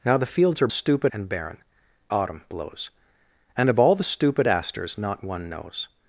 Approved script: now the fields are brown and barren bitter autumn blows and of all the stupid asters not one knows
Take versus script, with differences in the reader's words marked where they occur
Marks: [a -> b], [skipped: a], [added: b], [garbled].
now the fields are [brown -> stupid] and barren [skipped: bitter] autumn blows and of all the stupid asters not one knows